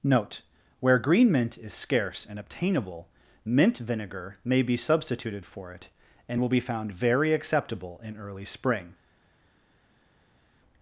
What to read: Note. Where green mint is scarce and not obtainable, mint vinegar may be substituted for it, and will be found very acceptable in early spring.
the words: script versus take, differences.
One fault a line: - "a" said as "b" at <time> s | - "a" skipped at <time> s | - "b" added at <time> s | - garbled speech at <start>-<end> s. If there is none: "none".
- "not" skipped at 2.4 s